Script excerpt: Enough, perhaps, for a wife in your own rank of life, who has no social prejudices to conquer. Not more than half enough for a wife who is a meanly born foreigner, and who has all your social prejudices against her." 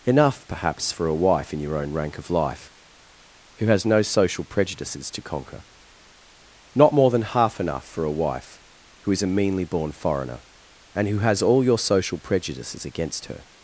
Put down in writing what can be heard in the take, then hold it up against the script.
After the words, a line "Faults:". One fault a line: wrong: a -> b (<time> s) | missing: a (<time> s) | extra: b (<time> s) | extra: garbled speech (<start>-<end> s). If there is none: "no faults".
Enough, perhaps, for a wife in your own rank of life, who has no social prejudices to conquer. Not more than half enough for a wife who is a meanly born foreigner, and who has all your social prejudices against her."
Faults:
no faults